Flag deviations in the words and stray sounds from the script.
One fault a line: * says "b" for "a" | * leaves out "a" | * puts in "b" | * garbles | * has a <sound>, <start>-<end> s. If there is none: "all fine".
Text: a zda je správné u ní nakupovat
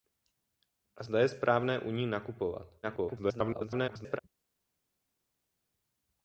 * garbles